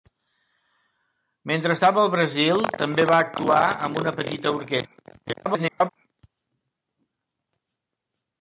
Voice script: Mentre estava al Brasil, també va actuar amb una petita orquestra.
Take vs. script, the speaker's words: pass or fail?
fail